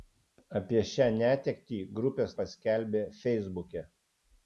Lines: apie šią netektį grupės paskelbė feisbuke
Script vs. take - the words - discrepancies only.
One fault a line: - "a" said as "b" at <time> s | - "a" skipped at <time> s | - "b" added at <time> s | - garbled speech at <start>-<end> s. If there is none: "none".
none